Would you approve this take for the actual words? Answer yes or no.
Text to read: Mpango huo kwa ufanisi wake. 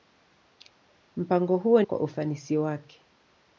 yes